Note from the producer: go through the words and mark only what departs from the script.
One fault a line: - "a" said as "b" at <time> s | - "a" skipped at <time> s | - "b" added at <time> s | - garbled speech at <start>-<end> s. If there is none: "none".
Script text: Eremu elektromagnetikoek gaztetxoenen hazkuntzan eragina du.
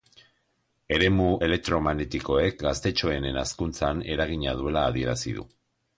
- "duela adierazi" added at 4.6 s